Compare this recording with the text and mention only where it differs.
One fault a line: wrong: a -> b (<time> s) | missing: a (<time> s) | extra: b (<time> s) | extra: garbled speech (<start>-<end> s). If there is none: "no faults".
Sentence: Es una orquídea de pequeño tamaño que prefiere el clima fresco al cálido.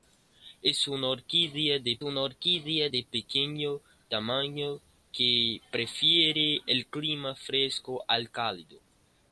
extra: una orquídea de (2.0 s)